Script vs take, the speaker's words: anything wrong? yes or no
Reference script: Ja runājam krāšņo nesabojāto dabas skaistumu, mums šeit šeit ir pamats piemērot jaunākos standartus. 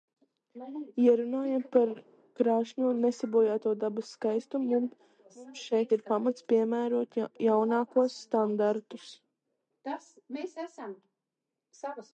yes